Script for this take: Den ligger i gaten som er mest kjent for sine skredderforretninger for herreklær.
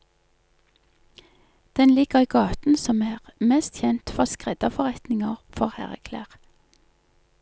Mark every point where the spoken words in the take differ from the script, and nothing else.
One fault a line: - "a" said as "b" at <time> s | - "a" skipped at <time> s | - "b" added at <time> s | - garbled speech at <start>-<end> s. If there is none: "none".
- "sine" skipped at 4.2 s